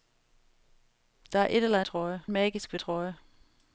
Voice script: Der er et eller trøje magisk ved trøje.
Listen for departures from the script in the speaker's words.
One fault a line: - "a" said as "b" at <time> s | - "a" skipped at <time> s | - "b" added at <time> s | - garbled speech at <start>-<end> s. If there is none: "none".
none